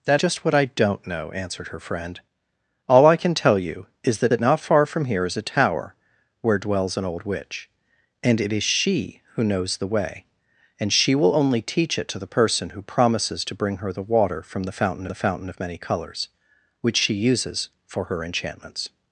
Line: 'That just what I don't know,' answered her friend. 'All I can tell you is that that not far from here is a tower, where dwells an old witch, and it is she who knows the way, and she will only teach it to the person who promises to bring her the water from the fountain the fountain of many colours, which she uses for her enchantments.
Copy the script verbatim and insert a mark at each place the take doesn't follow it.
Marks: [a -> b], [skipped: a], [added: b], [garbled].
'That just what I don't know,' answered her friend. 'All I can tell you is that that not far from here is a tower, where dwells an old witch, and it is she who knows the way, and she will only teach it to the person who promises to bring her the water from the fountain the fountain of many colours, which she uses for her enchantments.